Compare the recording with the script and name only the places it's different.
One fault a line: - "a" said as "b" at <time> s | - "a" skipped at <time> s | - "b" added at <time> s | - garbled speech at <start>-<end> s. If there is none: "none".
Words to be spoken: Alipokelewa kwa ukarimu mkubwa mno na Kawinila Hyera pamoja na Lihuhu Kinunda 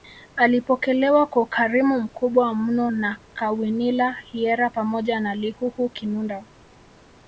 none